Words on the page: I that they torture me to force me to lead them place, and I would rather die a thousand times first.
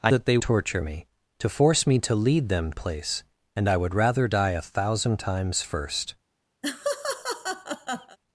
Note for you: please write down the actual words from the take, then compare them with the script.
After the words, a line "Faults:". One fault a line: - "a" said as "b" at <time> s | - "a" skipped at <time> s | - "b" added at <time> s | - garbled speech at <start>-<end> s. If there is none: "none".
I that they torture me to force me to lead them place, and I would rather die a thousand times first.
Faults:
none